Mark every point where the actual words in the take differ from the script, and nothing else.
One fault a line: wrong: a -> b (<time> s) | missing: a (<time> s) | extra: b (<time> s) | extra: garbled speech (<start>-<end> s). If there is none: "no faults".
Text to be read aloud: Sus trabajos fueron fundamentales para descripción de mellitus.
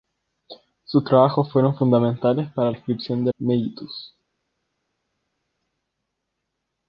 no faults